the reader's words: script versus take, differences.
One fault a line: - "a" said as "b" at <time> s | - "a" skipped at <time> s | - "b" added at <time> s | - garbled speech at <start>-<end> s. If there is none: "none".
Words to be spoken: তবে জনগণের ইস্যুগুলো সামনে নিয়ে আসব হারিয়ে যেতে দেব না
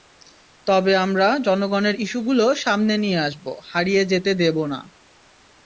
- "আমরা" added at 1.0 s